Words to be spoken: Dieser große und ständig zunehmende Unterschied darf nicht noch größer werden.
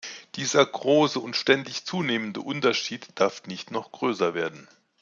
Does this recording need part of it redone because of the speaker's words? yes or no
no